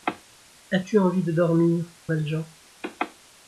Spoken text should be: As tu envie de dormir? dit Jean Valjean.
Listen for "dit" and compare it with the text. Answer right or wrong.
wrong